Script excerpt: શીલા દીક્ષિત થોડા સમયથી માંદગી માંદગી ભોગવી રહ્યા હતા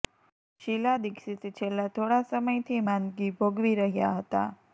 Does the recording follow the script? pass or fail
fail